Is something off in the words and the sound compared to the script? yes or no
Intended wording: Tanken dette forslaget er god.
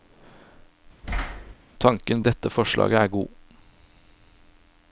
yes